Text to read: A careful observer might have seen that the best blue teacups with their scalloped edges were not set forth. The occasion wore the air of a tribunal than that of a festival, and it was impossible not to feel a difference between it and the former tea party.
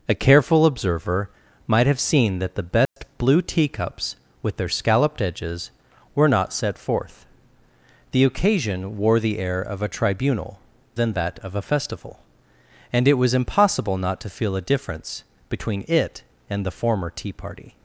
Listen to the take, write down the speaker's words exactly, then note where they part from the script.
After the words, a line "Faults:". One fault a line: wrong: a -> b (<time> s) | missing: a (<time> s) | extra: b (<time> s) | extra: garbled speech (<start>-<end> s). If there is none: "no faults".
A careful observer might have seen that the best blue teacups with their scalloped edges were not set forth. The occasion wore the air of a tribunal than that of a festival, and it was impossible not to feel a difference between it and the former tea party.
Faults:
no faults